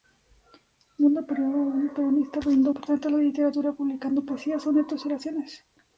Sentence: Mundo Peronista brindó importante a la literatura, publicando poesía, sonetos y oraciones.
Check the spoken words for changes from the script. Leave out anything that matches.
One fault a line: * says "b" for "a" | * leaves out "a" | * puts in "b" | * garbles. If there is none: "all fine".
all fine